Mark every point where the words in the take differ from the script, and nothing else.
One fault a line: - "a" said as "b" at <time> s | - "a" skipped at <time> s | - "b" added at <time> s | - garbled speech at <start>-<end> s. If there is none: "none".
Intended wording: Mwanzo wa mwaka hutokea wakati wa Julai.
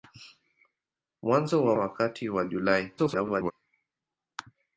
- "mwaka hutokea" skipped at 1.8 s
- garbled speech at 3.0-3.5 s